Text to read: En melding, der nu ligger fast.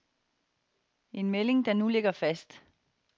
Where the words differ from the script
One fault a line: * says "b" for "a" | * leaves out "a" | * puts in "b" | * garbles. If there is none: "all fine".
all fine